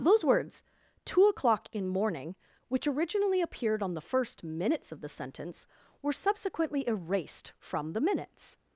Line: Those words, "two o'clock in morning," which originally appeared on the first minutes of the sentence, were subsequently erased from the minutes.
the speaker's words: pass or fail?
pass